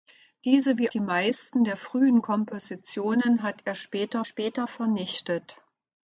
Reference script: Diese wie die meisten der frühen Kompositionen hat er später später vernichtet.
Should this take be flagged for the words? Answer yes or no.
no